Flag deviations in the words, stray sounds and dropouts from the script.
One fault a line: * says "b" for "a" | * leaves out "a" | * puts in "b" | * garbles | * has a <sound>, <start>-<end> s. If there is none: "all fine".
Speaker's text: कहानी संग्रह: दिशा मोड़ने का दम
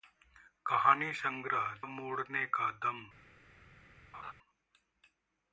* leaves out "दिशा"
* has a laugh, 4.1-4.3 s